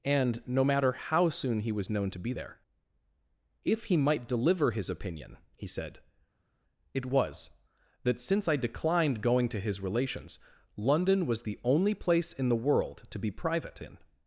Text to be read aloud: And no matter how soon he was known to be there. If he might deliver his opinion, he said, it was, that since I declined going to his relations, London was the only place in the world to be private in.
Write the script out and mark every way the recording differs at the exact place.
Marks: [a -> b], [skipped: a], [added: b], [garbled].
And no matter how soon he was known to be there. If he might deliver his opinion, he said, it was, that since I declined going to his relations, London was the only place in the world to be private in.